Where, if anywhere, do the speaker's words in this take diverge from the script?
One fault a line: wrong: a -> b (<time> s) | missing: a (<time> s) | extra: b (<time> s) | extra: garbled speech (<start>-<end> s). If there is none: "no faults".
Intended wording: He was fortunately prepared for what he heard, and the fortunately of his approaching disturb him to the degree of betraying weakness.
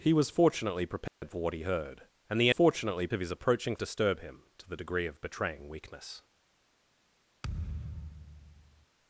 no faults